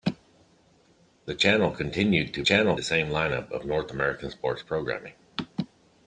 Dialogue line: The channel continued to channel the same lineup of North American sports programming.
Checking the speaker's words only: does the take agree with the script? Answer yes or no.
yes